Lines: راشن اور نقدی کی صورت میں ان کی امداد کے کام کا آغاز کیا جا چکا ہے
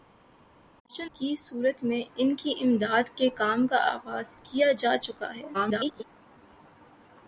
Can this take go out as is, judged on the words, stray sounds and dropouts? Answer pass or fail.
fail